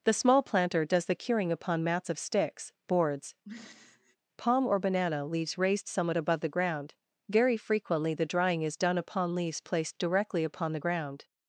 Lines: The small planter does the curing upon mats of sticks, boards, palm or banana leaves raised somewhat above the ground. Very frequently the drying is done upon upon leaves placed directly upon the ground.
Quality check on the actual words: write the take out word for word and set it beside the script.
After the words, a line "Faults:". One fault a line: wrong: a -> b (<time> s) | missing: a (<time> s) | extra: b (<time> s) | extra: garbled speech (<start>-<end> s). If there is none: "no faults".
The small planter does the curing upon mats of sticks, boards, palm or banana leaves raised somewhat above the ground. Very frequently the drying is done upon leaves placed directly upon the ground.
Faults:
missing: upon (9.3 s)